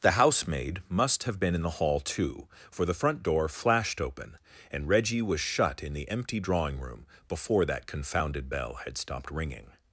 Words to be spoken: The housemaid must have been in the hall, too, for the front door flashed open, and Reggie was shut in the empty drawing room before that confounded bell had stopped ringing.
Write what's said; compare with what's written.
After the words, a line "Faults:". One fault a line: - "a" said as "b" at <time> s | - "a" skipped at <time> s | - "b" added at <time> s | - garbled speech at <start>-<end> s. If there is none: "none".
The housemaid must have been in the hall, too, for the front door flashed open, and Reggie was shut in the empty drawing room before that confounded bell had stopped ringing.
Faults:
none